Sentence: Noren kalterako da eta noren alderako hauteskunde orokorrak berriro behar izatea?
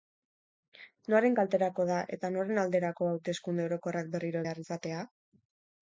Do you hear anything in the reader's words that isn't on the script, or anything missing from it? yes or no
no